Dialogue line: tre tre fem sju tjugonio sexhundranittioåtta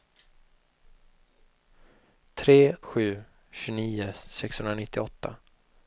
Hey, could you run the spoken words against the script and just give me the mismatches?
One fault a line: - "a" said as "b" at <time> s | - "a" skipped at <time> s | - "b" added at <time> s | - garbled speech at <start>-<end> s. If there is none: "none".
- "tre fem" skipped at 2.8 s